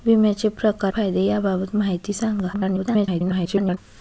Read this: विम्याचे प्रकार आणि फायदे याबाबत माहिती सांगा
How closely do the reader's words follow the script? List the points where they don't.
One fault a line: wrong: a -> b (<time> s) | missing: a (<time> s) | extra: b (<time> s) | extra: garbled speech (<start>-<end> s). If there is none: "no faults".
missing: आणि (0.9 s)
extra: garbled speech (2.5-3.8 s)